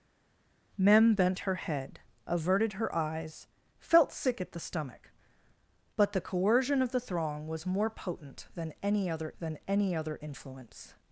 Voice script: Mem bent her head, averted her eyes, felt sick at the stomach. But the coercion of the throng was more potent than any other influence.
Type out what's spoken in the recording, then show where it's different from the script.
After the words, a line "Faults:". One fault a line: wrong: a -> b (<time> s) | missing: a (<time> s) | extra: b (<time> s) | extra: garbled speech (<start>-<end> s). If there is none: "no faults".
Mem bent her head, averted her eyes, felt sick at the stomach. But the coercion of the throng was more potent than any other than any other influence.
Faults:
extra: than any other (9.4 s)